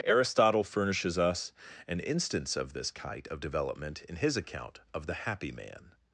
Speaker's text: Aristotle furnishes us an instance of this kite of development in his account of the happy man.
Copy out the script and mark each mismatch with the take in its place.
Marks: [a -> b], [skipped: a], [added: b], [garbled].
Aristotle furnishes us an instance of this kite of development in his account of the happy man.